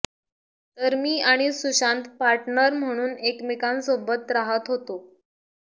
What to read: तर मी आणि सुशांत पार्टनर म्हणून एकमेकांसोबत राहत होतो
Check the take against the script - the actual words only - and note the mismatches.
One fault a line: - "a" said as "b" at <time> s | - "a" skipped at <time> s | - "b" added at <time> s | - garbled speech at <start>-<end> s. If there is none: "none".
none